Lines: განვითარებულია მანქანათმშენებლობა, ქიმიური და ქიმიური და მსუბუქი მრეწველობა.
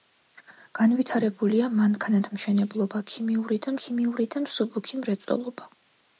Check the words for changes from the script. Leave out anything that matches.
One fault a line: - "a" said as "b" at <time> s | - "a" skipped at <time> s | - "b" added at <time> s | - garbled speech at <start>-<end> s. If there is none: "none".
none